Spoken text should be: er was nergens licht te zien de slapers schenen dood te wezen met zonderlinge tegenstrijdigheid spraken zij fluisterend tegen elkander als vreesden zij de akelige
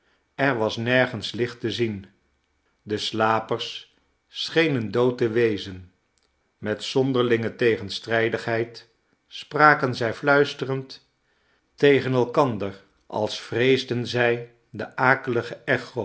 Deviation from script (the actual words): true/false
false